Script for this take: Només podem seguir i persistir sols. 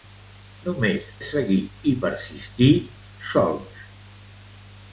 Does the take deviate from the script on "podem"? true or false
true